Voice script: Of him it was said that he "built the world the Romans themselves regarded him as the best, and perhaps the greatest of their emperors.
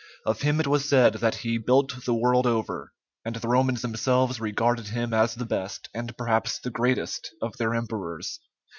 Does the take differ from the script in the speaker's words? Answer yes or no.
yes